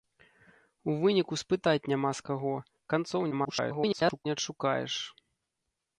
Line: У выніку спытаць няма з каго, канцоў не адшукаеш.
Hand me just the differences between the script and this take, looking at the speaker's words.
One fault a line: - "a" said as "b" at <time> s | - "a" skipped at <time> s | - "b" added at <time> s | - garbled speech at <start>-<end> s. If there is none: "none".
- garbled speech at 3.3-4.3 s